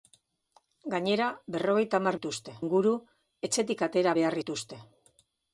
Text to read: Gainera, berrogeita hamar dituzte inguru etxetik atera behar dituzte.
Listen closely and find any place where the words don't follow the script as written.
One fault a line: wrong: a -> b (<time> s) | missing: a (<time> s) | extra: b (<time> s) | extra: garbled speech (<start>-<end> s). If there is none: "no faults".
no faults